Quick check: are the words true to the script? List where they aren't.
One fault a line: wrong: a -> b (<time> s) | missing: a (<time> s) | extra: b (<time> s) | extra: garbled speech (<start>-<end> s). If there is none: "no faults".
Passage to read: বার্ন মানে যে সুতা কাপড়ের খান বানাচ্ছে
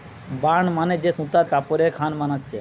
no faults